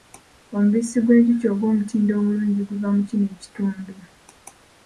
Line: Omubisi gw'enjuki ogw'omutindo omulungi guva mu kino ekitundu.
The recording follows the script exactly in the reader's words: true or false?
true